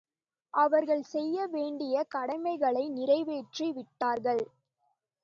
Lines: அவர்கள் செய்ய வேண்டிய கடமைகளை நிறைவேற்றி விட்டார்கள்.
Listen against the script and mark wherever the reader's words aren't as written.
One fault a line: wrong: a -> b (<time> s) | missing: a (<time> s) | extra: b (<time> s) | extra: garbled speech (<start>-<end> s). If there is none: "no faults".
no faults